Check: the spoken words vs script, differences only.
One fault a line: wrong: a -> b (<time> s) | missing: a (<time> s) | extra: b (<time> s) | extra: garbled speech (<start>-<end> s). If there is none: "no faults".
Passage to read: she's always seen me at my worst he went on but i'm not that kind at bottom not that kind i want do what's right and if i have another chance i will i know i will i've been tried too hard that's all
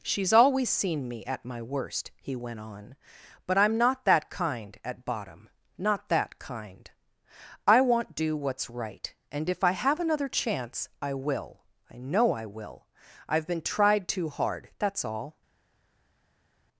no faults